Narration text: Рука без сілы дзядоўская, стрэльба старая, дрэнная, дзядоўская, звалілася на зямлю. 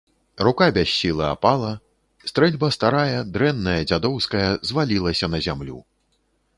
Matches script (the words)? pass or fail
fail